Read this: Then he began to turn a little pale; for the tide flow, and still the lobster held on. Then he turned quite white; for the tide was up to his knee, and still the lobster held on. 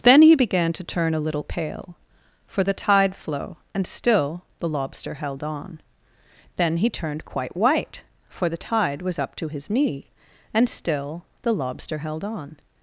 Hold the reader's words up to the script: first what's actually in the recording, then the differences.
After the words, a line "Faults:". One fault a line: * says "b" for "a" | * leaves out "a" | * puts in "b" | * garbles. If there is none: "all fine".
Then he began to turn a little pale; for the tide flow, and still the lobster held on. Then he turned quite white; for the tide was up to his knee, and still the lobster held on.
Faults:
all fine